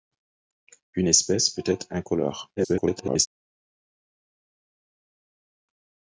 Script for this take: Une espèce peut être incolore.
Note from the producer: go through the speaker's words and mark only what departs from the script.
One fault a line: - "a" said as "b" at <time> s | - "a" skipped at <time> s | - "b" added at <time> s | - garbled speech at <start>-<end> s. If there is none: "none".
- garbled speech at 2.6-3.3 s